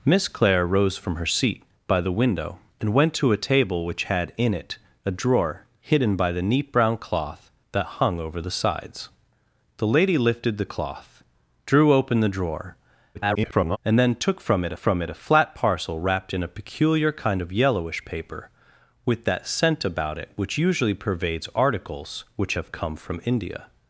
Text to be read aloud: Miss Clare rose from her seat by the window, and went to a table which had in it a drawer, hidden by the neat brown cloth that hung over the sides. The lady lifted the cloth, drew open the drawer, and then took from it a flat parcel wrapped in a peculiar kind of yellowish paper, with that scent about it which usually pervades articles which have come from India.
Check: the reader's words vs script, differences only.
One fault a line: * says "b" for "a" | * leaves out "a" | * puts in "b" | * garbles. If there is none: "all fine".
* garbles
* puts in "from it"